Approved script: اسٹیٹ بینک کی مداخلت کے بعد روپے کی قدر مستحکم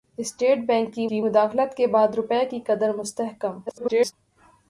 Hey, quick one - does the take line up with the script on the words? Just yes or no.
no